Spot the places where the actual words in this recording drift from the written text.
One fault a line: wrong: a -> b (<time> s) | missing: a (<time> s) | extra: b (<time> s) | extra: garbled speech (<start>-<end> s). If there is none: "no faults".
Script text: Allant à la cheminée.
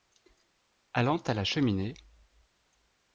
no faults